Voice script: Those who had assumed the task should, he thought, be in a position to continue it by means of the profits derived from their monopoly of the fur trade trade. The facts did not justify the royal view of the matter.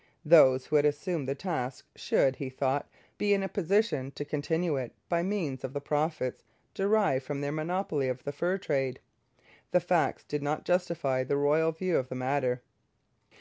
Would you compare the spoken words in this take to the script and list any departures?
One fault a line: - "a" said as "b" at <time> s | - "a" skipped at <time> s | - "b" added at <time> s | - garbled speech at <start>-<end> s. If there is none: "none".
- "trade" skipped at 9.0 s